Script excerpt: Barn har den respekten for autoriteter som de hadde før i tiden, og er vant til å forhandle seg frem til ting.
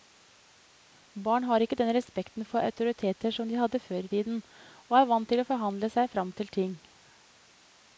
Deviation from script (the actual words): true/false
true